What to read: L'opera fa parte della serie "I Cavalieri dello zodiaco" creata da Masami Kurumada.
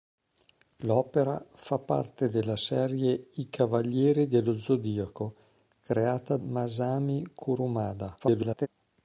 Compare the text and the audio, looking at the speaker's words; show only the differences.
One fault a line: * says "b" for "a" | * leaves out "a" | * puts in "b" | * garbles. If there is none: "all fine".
* leaves out "da"
* garbles